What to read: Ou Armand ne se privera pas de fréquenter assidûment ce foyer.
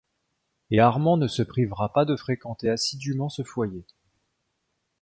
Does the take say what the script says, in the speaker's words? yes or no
no